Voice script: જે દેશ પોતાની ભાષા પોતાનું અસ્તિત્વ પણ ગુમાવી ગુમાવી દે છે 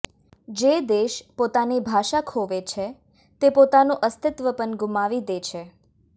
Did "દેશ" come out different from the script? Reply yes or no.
no